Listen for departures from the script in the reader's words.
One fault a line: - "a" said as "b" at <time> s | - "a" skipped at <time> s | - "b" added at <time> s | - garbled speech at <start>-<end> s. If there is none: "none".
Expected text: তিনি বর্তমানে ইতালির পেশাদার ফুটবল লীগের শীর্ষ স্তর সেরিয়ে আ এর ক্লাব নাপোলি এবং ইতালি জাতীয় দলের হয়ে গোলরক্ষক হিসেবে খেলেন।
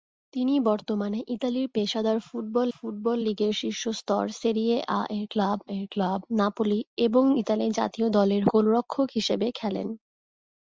- "ফুটবল" added at 2.7 s
- "এর ক্লাব" added at 5.7 s
- "হয়ে" skipped at 8.4 s